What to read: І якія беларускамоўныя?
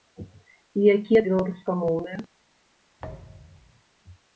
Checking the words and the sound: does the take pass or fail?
fail